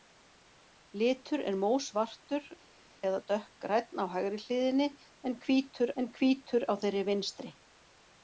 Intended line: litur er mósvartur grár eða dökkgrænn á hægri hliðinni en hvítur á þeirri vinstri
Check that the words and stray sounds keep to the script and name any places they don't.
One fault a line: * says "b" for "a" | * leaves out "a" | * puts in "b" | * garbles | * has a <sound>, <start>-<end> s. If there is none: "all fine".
* leaves out "grár"
* puts in "en hvítur"